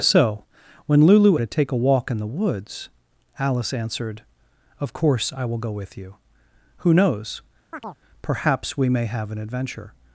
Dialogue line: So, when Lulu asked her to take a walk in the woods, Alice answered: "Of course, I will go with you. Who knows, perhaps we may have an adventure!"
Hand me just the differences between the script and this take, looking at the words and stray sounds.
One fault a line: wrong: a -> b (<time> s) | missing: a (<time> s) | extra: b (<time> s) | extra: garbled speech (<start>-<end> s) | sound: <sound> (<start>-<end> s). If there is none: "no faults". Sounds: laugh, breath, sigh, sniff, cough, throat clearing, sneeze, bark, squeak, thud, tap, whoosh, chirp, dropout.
missing: asked her (1.4 s)
sound: chirp (7.7-8.0 s)